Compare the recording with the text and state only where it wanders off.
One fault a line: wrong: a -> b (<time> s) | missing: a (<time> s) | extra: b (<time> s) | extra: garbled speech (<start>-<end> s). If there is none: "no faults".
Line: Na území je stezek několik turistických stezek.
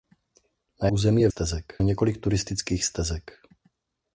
no faults